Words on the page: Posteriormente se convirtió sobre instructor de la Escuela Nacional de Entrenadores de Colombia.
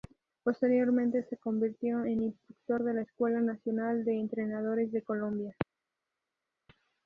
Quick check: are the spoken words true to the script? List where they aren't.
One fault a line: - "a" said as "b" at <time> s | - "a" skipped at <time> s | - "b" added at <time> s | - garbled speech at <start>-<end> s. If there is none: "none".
- "sobre" said as "en" at 2.0 s